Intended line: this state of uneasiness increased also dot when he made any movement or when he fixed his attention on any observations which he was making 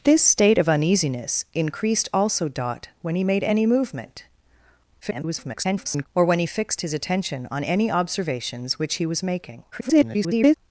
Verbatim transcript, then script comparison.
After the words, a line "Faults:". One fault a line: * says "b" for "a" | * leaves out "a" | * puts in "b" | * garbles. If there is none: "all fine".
this state of uneasiness increased also dot when he made any movement [garbled] or when he fixed his attention on any observations which he was making [garbled]
Faults:
* garbles
* garbles